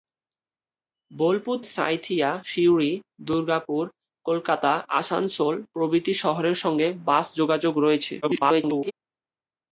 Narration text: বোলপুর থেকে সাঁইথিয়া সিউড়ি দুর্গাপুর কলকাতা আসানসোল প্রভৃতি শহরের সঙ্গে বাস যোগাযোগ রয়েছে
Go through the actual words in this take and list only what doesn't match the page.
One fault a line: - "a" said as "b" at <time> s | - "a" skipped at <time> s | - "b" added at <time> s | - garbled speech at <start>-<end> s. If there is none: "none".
- "থেকে" skipped at 1.6 s
- garbled speech at 8.2-8.9 s